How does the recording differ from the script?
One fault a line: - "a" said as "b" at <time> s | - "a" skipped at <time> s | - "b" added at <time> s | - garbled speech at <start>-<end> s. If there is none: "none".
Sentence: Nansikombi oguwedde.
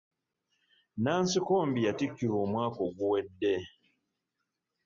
- "yatikkirwa omwaka" added at 1.9 s